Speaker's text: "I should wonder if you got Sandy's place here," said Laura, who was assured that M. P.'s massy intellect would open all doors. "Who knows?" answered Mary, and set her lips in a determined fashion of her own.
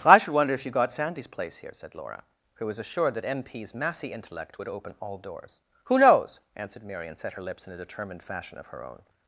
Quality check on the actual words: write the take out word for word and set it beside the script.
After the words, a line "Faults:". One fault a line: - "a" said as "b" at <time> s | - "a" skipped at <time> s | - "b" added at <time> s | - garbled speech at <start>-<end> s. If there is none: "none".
"I should wonder if you got Sandy's place here," said Laura, who was assured that M. P.'s massy intellect would open all doors. "Who knows?" answered Mary, and set her lips in a determined fashion of her own.
Faults:
none